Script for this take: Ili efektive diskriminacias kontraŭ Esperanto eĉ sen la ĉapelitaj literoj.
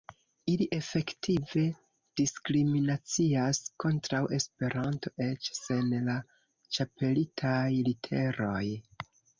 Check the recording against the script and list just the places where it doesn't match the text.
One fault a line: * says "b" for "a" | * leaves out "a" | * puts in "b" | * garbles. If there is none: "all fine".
all fine